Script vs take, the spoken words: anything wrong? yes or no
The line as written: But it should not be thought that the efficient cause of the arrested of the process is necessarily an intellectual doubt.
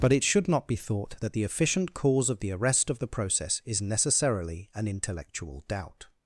yes